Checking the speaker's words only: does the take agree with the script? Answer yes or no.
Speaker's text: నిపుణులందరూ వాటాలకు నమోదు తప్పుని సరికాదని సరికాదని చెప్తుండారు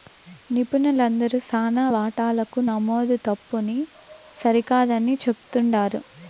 no